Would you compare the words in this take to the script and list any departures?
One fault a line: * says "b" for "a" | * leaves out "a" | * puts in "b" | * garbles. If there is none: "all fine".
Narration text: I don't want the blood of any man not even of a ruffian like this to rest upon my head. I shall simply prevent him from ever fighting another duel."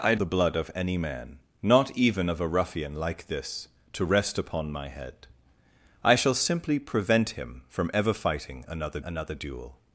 * leaves out "don't want"
* puts in "another"